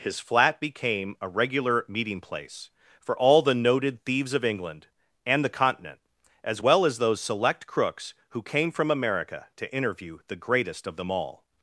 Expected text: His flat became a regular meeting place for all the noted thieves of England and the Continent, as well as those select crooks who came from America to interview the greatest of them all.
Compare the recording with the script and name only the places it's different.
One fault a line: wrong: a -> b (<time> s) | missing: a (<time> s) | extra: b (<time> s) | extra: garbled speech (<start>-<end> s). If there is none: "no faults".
no faults